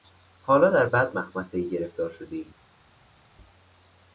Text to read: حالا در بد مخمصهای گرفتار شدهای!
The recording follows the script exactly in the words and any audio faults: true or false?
true